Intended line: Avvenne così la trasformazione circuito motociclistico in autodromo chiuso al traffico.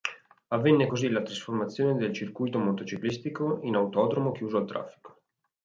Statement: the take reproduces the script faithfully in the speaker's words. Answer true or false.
false